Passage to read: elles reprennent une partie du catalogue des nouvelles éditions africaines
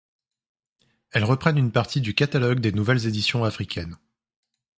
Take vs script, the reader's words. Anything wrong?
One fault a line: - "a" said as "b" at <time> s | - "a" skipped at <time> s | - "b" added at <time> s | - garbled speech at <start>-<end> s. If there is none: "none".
none